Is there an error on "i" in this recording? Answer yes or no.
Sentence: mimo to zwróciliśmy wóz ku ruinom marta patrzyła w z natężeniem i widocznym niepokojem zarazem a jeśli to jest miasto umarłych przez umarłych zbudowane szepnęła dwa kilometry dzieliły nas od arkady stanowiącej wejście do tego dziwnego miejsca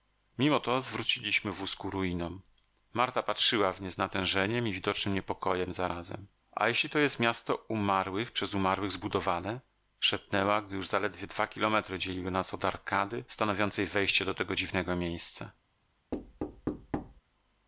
no